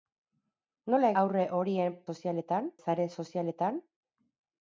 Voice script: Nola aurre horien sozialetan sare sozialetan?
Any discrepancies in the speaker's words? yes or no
no